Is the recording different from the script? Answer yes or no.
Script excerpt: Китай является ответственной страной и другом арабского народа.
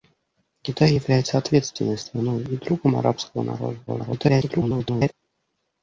yes